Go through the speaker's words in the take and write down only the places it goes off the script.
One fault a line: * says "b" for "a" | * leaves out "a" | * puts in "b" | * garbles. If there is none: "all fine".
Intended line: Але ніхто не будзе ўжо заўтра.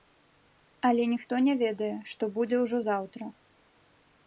* puts in "ведае што"